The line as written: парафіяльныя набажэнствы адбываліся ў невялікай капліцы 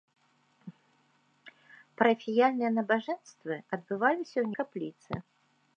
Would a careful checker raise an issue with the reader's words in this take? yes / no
yes